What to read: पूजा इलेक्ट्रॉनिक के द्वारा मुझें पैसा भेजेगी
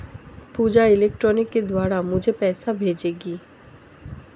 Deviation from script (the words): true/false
false